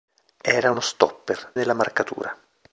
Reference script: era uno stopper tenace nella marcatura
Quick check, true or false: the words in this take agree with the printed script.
false